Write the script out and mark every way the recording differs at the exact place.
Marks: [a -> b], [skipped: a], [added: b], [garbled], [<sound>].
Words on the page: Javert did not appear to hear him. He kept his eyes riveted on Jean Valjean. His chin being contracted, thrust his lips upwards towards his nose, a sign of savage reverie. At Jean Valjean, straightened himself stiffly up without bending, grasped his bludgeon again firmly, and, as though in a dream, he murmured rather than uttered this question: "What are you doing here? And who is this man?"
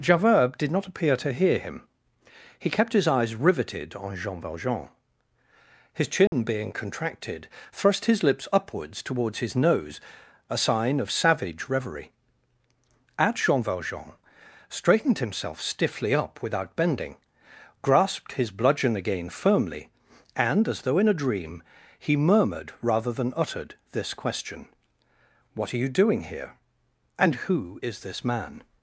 Javert did not appear to hear him. He kept his eyes riveted on Jean Valjean. His chin [dropout] being contracted, thrust his lips upwards towards his nose, a sign of savage reverie. At Jean Valjean, straightened himself stiffly up without bending, grasped his bludgeon again firmly, and, as though in a dream, he murmured rather than uttered this question: "What are you doing here? And who is this man?"